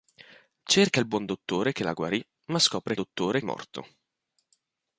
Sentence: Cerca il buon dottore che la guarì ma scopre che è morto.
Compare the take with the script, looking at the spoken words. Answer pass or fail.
fail